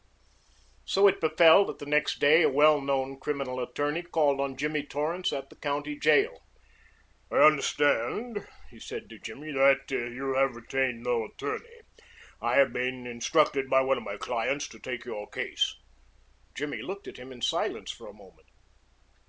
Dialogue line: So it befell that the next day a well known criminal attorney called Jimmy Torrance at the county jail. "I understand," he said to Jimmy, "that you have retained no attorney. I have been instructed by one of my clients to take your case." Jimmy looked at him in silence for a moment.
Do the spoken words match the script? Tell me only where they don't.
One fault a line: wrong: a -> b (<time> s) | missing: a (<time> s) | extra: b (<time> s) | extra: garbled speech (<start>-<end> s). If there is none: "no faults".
extra: on (4.4 s)